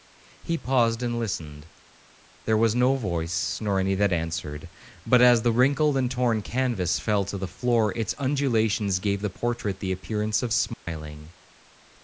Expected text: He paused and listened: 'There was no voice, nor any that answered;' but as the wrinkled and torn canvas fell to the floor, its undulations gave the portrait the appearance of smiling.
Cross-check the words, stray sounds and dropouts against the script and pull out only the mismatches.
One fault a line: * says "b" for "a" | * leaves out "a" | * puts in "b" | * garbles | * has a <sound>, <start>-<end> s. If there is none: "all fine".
* has a dropout, 10.7-10.9 s